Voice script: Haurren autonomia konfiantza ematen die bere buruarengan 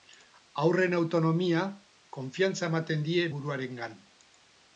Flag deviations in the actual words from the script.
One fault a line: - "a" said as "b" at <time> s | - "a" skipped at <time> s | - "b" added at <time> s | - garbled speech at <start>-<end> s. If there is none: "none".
- "bere" skipped at 3.2 s